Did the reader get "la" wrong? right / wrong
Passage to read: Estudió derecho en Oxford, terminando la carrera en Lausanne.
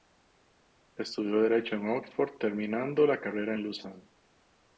right